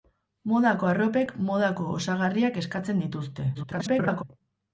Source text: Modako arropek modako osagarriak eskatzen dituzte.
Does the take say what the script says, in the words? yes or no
no